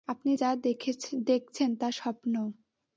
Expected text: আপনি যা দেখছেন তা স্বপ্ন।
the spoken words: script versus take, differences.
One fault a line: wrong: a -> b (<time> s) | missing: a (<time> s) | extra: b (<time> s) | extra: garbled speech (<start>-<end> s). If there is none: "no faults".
no faults